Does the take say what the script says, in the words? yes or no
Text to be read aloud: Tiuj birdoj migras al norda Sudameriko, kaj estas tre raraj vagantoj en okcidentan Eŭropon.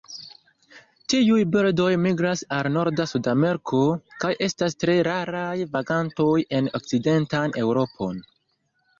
yes